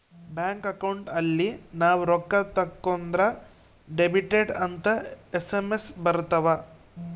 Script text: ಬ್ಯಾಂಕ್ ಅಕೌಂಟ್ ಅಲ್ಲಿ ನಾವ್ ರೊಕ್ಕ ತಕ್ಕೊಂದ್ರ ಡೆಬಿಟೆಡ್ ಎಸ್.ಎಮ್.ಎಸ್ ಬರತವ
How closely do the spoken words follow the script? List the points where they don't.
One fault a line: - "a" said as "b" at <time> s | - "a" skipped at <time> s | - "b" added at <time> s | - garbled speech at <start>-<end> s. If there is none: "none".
- "ಅಂತ" added at 4.7 s